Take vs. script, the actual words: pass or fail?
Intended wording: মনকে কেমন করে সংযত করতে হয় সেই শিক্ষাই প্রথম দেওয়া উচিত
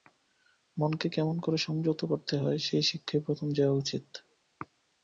pass